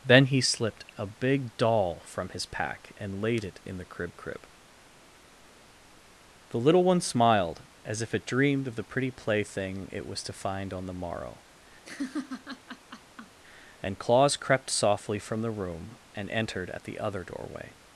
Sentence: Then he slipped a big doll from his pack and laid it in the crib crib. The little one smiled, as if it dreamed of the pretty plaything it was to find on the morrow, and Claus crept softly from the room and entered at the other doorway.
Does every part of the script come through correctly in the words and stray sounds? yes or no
no